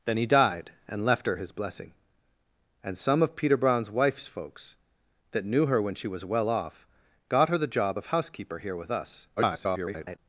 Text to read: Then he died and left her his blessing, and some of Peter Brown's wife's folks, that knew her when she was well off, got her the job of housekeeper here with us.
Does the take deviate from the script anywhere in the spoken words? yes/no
yes